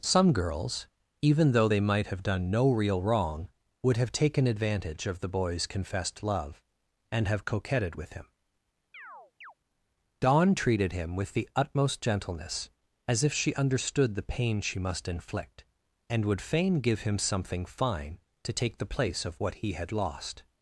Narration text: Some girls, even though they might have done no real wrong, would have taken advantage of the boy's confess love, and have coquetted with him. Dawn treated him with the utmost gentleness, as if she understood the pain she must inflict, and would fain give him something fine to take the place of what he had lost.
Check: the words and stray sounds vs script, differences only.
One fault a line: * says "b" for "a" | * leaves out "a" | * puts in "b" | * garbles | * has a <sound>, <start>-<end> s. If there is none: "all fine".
* says "confessed" for "confess"
* has a chirp, 8.9-9.5 s